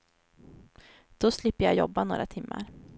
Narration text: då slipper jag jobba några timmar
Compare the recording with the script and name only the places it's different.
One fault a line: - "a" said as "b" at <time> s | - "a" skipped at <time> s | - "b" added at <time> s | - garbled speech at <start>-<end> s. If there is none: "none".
none